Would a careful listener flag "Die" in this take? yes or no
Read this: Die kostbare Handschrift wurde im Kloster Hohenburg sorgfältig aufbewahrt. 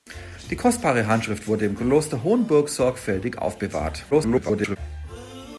no